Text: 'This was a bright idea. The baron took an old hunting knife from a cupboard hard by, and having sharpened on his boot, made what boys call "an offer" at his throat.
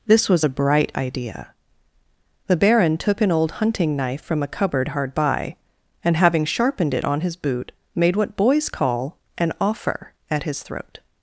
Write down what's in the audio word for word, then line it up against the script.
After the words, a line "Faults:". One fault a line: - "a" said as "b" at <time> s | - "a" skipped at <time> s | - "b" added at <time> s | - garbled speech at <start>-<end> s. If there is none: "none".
'This was a bright idea. The baron took an old hunting knife from a cupboard hard by, and having sharpened it on his boot, made what boys call "an offer" at his throat.
Faults:
- "it" added at 6.9 s